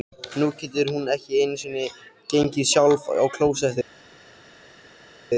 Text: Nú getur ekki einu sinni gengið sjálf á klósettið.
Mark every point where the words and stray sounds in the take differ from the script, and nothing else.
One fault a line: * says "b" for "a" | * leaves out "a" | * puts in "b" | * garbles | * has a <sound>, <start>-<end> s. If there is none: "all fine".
* puts in "hún"